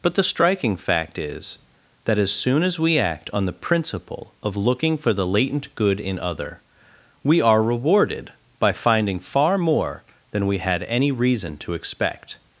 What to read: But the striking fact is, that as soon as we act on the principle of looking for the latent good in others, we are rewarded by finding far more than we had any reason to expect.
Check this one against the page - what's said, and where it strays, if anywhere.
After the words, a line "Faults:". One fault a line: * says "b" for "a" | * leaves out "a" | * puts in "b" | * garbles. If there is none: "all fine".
But the striking fact is, that as soon as we act on the principle of looking for the latent good in other, we are rewarded by finding far more than we had any reason to expect.
Faults:
* says "other" for "others"